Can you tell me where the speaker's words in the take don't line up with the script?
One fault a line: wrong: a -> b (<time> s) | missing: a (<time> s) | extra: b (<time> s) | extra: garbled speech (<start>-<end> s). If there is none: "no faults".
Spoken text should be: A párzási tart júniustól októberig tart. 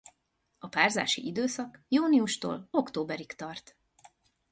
wrong: tart -> időszak (1.3 s)